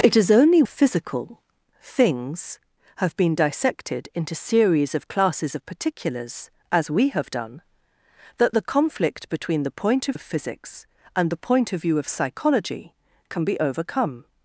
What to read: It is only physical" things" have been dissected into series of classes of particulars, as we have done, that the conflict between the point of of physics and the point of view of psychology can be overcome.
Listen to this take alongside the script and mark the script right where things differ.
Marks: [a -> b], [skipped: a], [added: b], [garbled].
It is only physical" things" have been dissected into series of classes of particulars, as we have done, that the conflict between the point of of physics and the point of view of psychology can be overcome.